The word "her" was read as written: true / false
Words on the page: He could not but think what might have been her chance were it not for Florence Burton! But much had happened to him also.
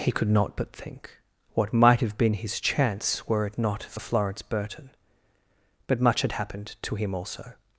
false